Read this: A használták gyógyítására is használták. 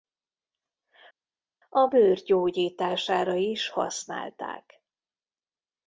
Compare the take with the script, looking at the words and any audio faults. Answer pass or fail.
fail